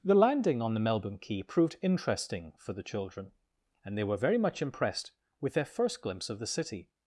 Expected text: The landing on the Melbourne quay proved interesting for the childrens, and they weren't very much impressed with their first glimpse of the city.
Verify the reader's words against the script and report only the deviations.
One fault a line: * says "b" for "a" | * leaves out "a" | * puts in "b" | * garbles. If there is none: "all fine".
* says "children" for "childrens"
* says "were" for "weren't"